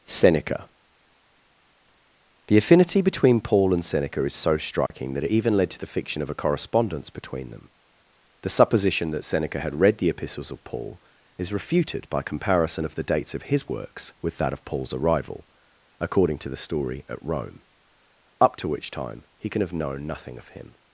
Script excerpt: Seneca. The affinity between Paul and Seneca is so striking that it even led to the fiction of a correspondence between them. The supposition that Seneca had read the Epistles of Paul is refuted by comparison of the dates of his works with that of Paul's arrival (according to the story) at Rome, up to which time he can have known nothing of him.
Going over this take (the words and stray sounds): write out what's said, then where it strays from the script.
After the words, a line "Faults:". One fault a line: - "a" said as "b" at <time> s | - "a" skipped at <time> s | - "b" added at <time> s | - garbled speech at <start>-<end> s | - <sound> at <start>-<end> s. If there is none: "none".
Seneca. The affinity between Paul and Seneca is so striking that it even led to the fiction of a correspondence between them. The supposition that Seneca had read the Epistles of Paul is refuted by comparison of the dates of his works with that of Paul's arrival (according to the story) at Rome, up to which time he can have known nothing of him.
Faults:
- dropout at 4.9-4.9 s